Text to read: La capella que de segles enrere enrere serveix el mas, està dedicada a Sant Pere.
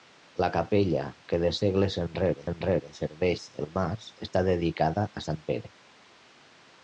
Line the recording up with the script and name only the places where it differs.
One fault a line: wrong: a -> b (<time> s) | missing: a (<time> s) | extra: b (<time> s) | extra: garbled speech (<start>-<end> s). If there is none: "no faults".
no faults